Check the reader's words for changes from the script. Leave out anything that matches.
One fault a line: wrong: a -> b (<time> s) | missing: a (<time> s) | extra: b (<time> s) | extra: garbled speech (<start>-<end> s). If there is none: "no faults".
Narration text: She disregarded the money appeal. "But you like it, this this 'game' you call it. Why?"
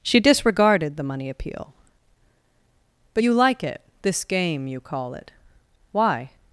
missing: this (4.2 s)